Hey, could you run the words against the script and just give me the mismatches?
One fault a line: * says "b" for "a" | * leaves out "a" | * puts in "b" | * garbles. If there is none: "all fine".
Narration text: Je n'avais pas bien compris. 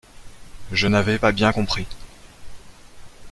all fine